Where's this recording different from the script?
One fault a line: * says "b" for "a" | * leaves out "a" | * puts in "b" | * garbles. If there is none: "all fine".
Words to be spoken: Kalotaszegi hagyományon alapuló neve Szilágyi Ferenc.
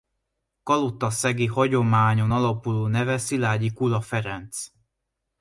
* puts in "Kula"